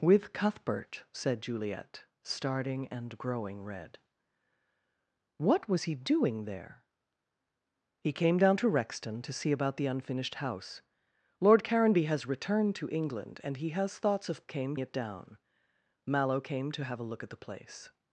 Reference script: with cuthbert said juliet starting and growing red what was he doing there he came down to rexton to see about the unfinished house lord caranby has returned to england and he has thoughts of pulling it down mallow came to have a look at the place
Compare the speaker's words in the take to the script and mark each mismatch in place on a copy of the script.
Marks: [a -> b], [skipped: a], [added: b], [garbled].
with cuthbert said juliet starting and growing red what was he doing there he came down to rexton to see about the unfinished house lord caranby has returned to england and he has thoughts of [pulling -> came] it down mallow came to have a look at the place